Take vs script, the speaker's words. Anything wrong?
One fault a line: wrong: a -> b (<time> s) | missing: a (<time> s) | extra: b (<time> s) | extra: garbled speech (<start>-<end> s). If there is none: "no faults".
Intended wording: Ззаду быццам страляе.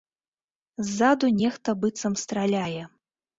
extra: нехта (1.4 s)